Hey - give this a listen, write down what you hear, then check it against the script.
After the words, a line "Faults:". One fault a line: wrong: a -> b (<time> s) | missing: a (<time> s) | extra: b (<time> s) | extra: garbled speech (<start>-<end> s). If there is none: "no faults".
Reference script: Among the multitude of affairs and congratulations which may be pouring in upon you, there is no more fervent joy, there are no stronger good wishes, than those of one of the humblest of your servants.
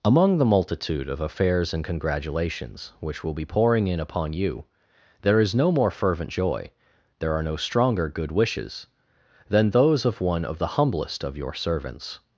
Among the multitude of affairs and congratulations which will be pouring in upon you, there is no more fervent joy, there are no stronger good wishes, than those of one of the humblest of your servants.
Faults:
wrong: may -> will (3.2 s)